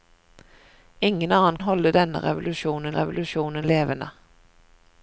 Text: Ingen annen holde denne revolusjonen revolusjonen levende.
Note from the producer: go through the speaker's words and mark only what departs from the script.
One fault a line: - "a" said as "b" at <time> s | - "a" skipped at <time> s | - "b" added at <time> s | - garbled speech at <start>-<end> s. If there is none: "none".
none